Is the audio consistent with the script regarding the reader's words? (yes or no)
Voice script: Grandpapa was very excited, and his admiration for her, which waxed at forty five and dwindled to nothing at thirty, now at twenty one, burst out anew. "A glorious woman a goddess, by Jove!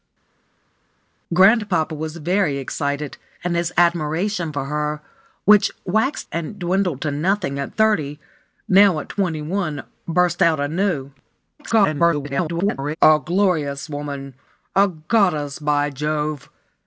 no